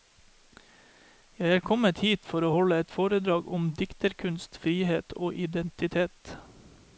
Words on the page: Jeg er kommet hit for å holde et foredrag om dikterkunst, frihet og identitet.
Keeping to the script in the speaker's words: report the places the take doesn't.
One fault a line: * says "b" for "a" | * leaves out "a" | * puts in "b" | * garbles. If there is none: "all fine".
all fine